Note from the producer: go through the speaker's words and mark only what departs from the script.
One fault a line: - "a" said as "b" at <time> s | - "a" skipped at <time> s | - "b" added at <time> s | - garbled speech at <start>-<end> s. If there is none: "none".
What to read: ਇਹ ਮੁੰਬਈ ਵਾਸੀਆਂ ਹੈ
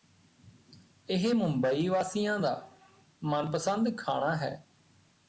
- "ਦਾ ਮਨਪਸੰਦ ਖਾਣਾ" added at 2.4 s